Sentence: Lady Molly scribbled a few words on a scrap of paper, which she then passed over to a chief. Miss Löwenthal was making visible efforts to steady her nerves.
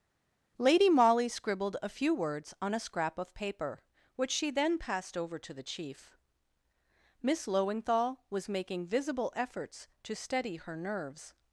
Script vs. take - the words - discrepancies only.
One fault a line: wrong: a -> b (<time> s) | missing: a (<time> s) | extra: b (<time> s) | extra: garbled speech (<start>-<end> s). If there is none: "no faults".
wrong: a -> the (5.5 s)